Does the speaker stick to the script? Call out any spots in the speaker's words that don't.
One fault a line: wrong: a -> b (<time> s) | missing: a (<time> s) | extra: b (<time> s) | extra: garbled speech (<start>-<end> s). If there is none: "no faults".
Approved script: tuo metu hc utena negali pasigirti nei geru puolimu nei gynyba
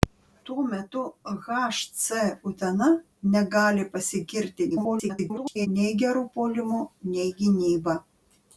extra: garbled speech (4.7-5.7 s)